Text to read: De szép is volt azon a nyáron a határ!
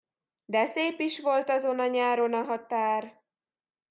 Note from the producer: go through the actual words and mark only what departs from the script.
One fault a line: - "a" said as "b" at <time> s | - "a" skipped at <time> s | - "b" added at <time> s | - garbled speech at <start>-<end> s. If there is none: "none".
none